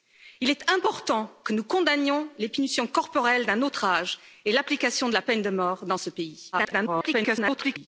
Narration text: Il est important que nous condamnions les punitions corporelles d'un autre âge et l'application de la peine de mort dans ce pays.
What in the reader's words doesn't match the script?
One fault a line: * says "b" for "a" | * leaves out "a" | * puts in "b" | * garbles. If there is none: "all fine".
* garbles